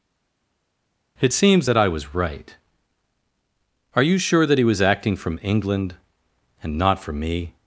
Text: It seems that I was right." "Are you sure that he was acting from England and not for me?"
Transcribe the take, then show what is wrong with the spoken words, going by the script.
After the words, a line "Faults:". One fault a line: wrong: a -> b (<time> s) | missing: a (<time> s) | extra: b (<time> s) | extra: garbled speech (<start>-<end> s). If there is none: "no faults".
It seems that I was right." "Are you sure that he was acting from England and not for me?"
Faults:
no faults